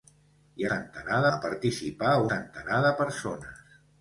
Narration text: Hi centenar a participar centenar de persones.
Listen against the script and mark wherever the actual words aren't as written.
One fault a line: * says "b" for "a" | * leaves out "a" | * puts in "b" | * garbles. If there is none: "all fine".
all fine